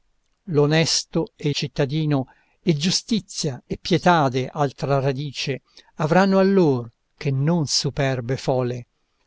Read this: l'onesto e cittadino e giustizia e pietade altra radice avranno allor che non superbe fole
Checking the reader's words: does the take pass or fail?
pass